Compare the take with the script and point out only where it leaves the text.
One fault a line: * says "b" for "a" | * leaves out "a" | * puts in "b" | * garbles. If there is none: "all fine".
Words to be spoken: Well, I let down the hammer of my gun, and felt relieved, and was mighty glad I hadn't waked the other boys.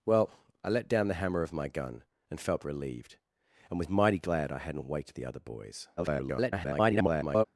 * garbles